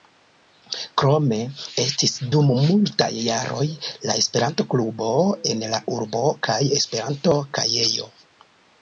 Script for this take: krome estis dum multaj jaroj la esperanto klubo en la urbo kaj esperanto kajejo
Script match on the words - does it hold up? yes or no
yes